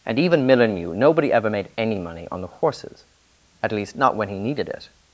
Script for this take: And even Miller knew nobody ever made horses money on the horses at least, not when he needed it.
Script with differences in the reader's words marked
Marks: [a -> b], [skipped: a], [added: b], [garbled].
And even Miller knew nobody ever made [horses -> any] money on the horses at least, not when he needed it.